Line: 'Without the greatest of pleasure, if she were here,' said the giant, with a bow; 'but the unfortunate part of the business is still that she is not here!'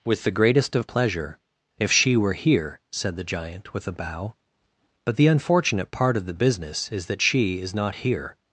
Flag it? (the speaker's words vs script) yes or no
yes